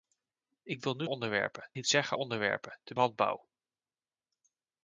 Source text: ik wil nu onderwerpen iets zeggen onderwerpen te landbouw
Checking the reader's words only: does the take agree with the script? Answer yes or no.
yes